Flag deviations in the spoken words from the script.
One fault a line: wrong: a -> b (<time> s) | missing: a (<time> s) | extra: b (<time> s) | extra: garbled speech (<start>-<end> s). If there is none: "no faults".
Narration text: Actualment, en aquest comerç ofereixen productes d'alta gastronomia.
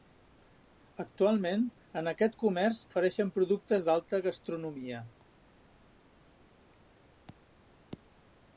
no faults